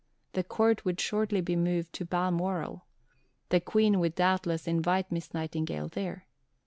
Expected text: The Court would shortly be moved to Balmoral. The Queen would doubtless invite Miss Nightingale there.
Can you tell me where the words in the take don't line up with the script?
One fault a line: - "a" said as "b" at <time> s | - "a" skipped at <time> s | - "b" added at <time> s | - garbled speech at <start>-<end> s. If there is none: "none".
none